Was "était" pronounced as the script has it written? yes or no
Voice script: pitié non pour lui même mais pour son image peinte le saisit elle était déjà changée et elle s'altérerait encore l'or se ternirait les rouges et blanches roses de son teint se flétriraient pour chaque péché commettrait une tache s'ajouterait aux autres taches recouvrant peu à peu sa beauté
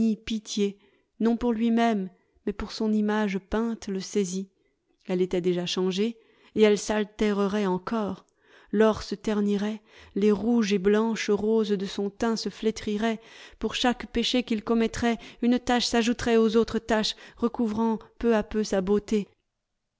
yes